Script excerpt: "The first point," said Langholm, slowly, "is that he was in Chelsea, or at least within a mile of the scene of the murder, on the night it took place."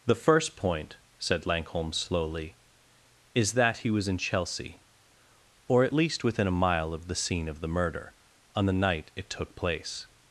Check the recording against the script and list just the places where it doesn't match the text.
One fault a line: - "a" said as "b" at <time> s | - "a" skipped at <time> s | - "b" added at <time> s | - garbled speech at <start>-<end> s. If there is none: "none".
none